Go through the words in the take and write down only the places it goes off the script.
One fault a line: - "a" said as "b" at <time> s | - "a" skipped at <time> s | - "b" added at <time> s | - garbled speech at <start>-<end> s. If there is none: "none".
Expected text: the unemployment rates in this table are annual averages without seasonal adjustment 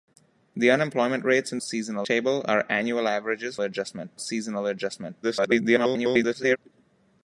- "this" said as "seasonal" at 1.6 s
- "without" said as "adjustment" at 3.6 s
- garbled speech at 5.2-6.6 s